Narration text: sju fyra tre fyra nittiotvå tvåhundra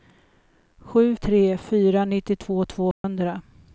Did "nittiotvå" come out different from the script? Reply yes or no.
no